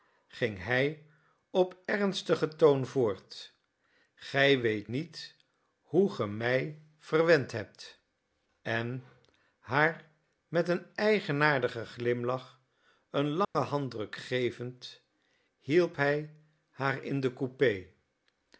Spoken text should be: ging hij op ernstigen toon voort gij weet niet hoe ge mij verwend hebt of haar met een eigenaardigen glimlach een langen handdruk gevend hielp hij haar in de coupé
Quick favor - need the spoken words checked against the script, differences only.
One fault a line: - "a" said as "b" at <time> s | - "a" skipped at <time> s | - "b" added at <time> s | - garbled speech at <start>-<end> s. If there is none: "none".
- "of" said as "en" at 8.6 s